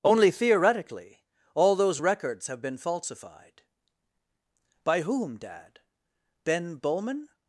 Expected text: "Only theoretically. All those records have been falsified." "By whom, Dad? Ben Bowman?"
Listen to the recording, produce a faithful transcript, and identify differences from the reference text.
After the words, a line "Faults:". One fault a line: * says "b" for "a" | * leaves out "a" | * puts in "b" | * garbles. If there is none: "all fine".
"Only theoretically. All those records have been falsified." "By whom, Dad? Ben Bowman?"
Faults:
all fine